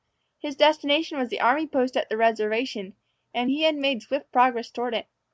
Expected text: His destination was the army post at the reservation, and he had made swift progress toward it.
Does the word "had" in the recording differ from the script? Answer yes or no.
no